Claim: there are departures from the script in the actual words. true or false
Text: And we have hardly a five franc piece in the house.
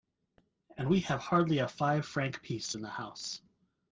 false